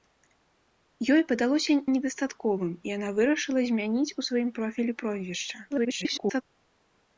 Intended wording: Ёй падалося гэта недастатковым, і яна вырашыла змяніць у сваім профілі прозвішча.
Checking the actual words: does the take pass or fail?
fail